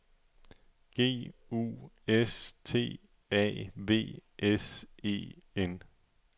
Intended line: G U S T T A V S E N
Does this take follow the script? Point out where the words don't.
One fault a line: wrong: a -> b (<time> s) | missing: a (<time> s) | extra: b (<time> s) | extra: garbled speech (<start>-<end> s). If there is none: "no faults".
missing: T (3.0 s)